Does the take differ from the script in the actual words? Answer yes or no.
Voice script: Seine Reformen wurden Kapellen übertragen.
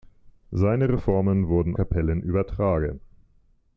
no